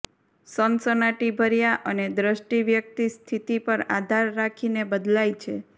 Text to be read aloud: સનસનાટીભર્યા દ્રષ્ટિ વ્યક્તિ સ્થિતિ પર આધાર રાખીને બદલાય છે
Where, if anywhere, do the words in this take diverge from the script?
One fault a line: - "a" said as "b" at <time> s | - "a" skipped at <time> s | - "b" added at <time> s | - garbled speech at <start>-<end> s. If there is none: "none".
- "અને" added at 1.9 s